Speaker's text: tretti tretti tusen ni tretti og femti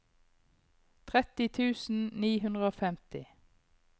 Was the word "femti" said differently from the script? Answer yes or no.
no